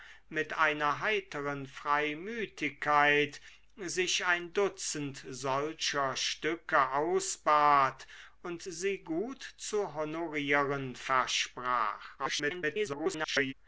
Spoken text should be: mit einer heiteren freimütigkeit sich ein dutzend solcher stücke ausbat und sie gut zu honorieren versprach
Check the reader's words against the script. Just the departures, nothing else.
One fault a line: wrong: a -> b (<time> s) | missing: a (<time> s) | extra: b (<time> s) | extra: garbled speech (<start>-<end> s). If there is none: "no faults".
extra: garbled speech (12.2-13.5 s)